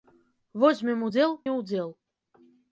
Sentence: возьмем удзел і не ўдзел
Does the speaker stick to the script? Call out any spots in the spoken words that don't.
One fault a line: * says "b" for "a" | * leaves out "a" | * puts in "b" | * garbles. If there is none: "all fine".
* leaves out "і"